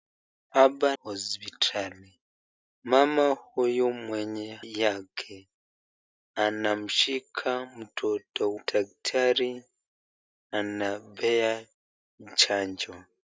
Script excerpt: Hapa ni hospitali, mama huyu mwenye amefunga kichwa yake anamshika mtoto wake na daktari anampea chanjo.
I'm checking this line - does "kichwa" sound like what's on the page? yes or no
no